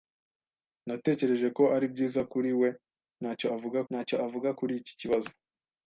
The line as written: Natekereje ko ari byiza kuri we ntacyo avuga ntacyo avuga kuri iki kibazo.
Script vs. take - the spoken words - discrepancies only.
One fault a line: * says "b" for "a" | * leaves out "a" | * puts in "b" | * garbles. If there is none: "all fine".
all fine